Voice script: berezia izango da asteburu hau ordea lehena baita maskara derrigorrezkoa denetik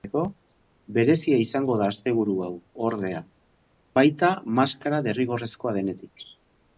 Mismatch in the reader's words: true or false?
true